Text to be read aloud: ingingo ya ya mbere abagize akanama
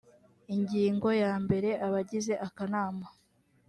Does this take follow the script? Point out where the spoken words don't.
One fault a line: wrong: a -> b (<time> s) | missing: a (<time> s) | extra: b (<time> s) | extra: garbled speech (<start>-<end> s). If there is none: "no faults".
missing: ya (1.3 s)